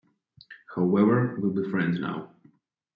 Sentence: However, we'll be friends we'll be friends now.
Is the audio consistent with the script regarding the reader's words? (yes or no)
no